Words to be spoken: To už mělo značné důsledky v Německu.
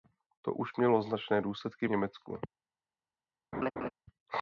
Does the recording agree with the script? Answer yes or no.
yes